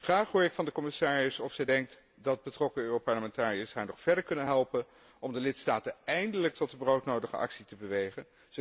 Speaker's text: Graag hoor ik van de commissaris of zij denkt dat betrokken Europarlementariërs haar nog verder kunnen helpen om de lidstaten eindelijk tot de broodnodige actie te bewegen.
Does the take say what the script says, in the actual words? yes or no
yes